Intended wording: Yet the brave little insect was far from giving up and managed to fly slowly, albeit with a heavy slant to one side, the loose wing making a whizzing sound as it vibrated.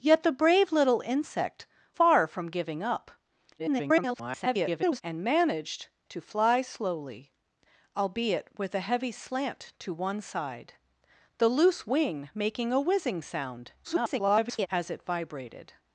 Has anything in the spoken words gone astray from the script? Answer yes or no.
yes